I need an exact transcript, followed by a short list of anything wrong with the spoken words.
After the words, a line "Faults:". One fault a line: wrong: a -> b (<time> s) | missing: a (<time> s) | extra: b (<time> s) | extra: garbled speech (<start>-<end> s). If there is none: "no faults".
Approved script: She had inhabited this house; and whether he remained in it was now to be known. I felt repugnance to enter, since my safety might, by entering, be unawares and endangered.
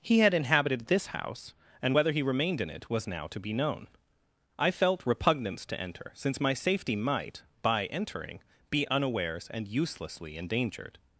He had inhabited this house; and whether he remained in it was now to be known. I felt repugnance to enter, since my safety might, by entering, be unawares and uselessly endangered.
Faults:
wrong: She -> He (0.0 s)
extra: uselessly (9.7 s)